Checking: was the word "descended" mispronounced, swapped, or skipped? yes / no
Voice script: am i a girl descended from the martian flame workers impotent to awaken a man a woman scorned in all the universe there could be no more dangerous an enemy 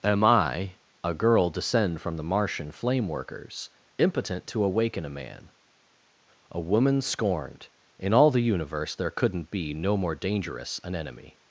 yes